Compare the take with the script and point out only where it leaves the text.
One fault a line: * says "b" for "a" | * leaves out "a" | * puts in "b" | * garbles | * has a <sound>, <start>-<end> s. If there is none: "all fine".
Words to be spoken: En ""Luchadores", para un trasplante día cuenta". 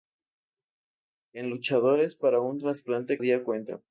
all fine